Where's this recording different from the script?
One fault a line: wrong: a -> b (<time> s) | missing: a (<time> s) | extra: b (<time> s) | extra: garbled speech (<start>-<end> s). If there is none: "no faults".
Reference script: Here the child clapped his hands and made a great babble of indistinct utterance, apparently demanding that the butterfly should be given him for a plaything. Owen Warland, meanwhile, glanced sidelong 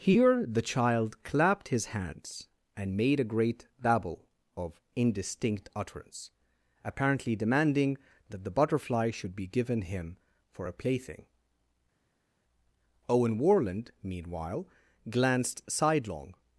no faults